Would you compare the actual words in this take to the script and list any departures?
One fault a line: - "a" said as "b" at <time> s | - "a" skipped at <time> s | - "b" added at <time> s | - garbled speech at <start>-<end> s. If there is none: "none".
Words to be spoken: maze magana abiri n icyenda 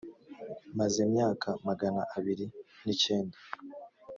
- "myaka" added at 1.1 s